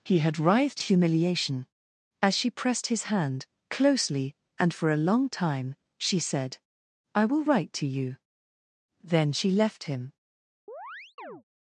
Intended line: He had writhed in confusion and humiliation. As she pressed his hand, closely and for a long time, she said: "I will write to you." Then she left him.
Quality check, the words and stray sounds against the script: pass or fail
fail